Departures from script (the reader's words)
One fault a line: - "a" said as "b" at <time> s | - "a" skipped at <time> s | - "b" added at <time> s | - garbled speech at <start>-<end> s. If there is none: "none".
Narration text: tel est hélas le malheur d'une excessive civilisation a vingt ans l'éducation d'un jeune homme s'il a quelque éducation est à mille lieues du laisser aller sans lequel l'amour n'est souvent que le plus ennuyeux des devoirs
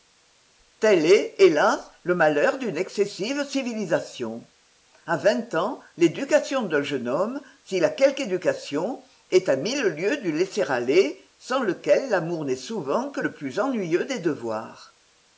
none